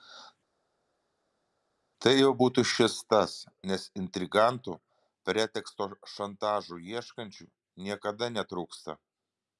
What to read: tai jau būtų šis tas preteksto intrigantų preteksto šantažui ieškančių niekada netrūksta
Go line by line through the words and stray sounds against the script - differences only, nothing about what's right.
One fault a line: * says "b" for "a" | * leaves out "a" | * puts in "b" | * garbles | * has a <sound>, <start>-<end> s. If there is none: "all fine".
* says "nes" for "preteksto"